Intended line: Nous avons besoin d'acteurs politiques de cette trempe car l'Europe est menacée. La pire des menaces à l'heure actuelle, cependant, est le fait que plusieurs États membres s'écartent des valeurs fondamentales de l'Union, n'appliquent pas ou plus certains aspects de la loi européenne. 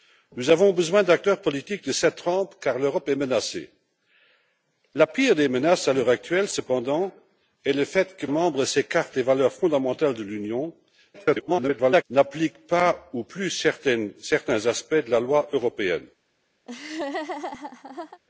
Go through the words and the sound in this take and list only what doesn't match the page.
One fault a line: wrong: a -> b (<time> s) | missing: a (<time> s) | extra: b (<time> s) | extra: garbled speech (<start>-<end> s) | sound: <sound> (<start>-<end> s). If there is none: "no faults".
missing: plusieurs États (8.2 s)
extra: garbled speech (11.1-12.0 s)
sound: laugh (16.6-18.2 s)